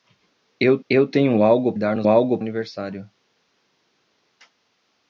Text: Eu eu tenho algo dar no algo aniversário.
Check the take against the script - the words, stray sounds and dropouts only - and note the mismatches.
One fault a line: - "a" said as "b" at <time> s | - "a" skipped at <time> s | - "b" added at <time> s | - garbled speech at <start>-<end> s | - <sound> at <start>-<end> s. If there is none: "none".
none